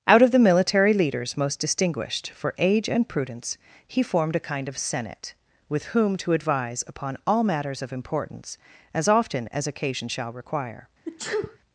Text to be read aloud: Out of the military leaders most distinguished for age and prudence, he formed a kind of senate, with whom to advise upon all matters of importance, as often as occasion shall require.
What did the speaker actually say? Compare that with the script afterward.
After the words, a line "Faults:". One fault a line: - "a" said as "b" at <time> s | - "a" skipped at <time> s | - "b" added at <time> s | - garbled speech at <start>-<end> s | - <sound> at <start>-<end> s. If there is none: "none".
Out of the military leaders most distinguished for age and prudence, he formed a kind of senate, with whom to advise upon all matters of importance, as often as occasion shall require.
Faults:
- sneeze at 11.1-11.6 s